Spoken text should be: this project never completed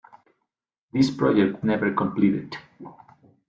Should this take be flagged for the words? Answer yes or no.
no